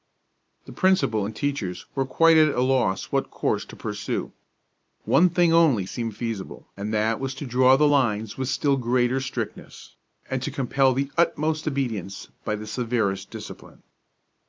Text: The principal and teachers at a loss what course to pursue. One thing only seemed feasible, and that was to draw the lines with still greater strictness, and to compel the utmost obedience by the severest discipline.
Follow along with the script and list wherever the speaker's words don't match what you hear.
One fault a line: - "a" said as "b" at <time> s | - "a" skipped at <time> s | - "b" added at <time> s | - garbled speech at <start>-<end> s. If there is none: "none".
- "were quite" added at 1.9 s